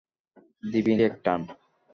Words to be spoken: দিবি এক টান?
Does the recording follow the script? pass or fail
pass